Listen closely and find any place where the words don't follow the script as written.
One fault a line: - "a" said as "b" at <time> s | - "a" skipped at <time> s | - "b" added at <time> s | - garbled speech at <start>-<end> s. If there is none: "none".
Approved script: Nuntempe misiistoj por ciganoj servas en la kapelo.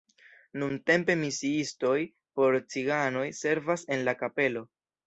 none